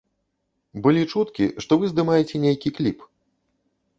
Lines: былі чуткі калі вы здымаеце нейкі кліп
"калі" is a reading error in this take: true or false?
true